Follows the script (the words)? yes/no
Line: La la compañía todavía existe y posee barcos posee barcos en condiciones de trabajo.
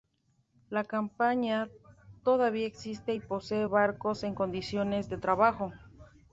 no